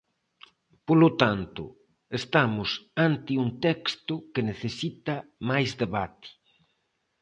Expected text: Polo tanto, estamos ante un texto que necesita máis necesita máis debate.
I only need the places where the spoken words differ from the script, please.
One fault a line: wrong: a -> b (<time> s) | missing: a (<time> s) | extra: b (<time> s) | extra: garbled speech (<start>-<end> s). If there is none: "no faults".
missing: necesita máis (5.7 s)